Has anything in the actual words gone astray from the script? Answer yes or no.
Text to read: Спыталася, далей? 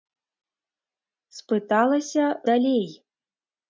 no